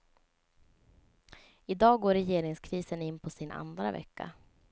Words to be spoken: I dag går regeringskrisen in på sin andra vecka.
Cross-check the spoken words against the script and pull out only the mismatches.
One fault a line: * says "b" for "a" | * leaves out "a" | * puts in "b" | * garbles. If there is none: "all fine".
all fine